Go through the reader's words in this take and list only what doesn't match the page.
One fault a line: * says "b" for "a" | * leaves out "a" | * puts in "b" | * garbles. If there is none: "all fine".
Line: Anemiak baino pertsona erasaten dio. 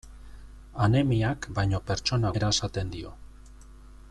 all fine